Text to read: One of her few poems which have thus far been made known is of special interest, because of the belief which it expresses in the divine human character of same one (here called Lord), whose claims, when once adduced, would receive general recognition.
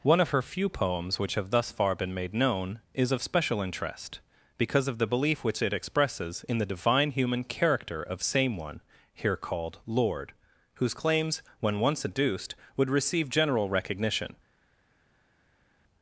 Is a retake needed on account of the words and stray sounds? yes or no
no